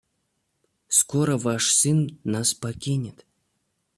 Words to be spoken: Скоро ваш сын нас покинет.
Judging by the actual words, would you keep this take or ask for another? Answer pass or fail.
pass